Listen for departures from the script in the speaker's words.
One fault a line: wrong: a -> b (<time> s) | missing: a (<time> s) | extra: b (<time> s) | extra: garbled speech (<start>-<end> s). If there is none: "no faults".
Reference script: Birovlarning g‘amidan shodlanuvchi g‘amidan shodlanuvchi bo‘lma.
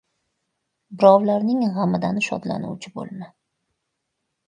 missing: g‘amidan shodlanuvchi (3.0 s)